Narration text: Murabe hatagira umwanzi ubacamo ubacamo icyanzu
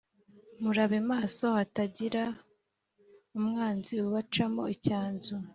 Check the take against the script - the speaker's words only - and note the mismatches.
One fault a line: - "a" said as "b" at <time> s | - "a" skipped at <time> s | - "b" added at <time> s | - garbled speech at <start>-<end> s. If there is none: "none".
- "maso" added at 1.1 s
- "ubacamo" skipped at 4.6 s